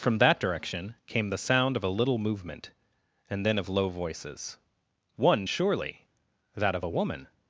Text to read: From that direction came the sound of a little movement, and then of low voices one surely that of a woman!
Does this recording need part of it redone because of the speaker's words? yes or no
no